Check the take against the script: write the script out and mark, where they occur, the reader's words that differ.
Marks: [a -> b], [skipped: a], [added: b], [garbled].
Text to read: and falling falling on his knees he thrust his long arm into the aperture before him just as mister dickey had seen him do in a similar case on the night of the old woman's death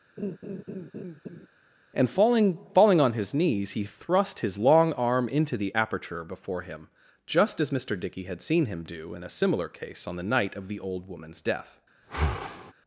and falling falling on his knees he thrust his long arm into the aperture before him just as mister dickey had seen him do in a similar case on the night of the old woman's death